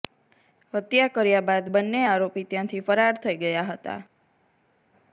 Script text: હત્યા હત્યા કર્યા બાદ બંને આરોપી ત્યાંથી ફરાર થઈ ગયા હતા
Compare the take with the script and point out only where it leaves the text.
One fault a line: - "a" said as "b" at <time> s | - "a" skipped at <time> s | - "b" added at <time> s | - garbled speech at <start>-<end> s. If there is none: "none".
- "હત્યા" skipped at 1.1 s